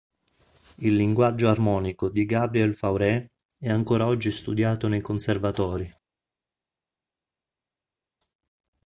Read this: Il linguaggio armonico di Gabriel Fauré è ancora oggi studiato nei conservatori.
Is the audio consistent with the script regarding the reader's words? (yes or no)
yes